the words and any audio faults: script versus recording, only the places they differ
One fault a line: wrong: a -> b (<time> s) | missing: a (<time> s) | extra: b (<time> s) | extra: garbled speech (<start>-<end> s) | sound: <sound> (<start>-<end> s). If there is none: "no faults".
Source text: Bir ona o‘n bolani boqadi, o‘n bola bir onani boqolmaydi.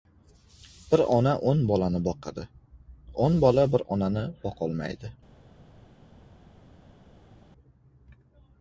no faults